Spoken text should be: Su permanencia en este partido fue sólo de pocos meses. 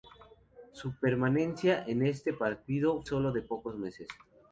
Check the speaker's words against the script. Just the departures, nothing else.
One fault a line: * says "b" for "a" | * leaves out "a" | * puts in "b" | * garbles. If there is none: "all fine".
* leaves out "fue"